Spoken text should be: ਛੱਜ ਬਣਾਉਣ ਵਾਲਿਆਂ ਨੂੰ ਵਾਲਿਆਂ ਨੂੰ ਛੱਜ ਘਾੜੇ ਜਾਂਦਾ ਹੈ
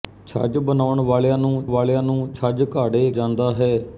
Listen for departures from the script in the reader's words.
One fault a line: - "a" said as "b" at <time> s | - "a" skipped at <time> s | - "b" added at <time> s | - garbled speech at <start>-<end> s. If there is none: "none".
none